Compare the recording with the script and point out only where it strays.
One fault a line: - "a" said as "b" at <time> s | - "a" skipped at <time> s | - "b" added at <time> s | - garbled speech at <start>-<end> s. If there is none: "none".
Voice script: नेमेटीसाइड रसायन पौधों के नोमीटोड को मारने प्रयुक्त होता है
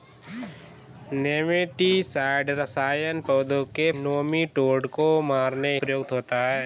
none